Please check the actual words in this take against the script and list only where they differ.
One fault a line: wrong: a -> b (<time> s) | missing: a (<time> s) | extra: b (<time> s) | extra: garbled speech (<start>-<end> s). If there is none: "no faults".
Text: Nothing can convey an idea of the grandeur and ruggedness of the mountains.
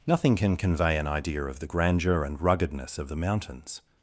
no faults